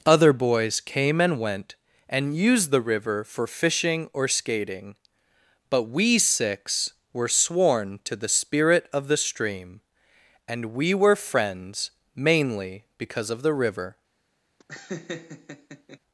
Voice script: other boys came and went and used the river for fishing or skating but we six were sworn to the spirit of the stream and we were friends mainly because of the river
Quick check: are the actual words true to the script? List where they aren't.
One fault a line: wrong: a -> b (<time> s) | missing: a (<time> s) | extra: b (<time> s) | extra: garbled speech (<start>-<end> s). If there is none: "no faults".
no faults